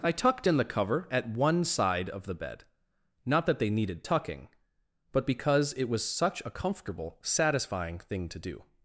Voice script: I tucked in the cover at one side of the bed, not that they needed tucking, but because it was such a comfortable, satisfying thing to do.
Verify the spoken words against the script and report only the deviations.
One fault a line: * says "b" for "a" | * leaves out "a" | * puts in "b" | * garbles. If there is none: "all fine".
all fine